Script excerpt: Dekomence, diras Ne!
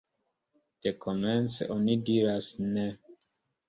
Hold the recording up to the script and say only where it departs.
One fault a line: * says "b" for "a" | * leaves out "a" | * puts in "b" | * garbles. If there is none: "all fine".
* puts in "oni"